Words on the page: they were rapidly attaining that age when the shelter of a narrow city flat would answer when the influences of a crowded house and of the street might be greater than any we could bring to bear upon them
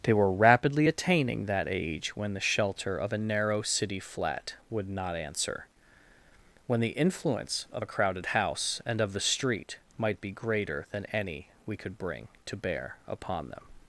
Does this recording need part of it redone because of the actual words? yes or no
yes